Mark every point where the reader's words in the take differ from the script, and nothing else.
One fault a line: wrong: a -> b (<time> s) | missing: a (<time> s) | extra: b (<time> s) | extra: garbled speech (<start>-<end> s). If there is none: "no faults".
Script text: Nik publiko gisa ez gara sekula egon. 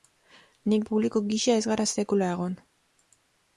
no faults